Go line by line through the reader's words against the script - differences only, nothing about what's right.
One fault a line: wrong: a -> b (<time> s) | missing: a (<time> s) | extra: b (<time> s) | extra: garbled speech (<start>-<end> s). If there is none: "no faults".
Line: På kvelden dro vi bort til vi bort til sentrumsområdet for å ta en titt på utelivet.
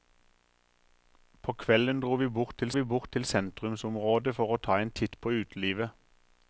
no faults